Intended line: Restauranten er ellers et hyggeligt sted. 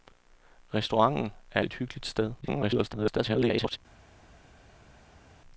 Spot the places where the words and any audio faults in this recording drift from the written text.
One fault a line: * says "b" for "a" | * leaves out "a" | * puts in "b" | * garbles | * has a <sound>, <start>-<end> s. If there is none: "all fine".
* leaves out "ellers"
* garbles